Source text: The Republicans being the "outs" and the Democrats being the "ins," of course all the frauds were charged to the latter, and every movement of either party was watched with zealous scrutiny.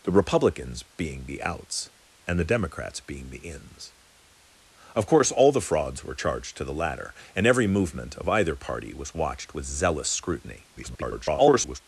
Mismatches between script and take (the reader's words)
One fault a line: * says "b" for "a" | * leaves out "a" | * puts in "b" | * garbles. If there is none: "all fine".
* garbles